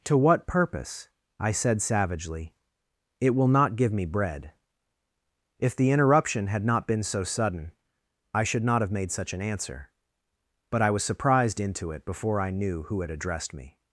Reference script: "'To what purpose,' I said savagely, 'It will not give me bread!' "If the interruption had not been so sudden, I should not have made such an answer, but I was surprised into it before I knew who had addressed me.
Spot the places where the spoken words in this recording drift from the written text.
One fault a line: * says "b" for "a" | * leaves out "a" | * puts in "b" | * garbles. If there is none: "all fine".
all fine